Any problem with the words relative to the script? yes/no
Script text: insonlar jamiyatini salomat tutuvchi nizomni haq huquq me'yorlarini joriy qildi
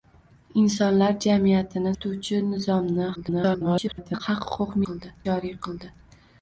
yes